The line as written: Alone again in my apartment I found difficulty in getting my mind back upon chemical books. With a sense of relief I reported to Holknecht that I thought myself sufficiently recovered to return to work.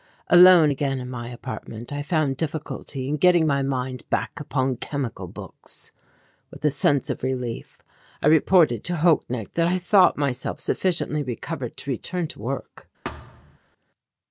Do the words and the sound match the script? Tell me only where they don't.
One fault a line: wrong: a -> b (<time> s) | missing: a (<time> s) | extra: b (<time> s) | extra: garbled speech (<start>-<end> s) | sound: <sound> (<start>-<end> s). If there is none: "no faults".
sound: thud (13.0-13.6 s)